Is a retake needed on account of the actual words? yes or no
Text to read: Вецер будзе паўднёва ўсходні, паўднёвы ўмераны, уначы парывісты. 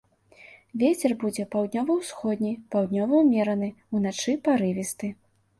no